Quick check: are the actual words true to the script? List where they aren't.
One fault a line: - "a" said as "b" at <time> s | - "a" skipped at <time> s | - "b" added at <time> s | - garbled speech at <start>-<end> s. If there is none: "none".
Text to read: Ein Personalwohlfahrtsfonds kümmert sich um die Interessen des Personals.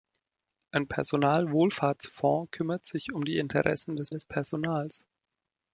- "des" added at 4.1 s